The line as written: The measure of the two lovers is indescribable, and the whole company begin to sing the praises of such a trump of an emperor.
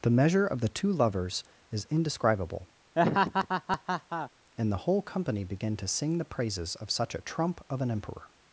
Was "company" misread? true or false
false